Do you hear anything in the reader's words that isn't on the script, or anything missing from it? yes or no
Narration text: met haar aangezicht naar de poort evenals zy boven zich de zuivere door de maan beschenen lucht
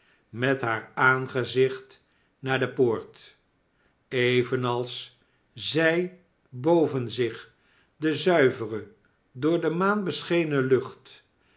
no